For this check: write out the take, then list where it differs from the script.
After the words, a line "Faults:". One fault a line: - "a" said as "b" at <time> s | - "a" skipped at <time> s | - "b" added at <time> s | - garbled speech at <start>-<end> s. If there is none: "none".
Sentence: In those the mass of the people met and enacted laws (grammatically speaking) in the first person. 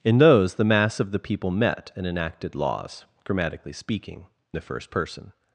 In those the mass of the people met and enacted laws (grammatically speaking) the first person.
Faults:
- "in" skipped at 4.2 s